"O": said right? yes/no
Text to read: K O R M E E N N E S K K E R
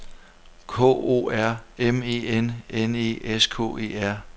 yes